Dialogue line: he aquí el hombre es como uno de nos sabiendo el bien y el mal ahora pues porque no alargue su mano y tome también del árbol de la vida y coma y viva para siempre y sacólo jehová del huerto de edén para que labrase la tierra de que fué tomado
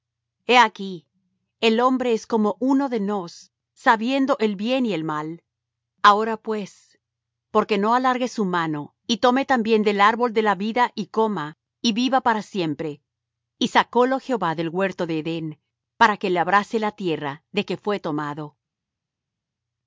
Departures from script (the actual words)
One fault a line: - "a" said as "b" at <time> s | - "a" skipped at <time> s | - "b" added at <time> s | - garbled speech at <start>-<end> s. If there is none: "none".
none